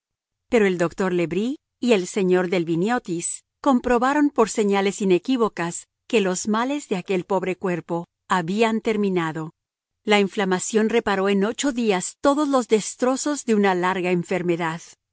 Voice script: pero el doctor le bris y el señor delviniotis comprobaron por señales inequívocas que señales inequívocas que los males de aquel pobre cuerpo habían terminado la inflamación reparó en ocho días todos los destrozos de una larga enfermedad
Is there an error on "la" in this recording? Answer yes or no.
no